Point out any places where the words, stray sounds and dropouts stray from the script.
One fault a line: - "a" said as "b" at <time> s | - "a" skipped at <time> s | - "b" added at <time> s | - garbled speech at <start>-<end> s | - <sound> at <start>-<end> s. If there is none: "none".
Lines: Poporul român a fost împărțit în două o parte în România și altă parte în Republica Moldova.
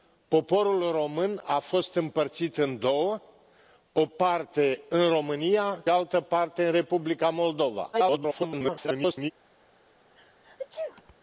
- "și" skipped at 5.8 s
- garbled speech at 7.9-9.3 s
- sneeze at 10.2-11.2 s